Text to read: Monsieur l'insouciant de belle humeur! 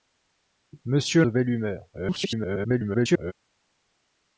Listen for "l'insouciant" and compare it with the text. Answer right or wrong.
wrong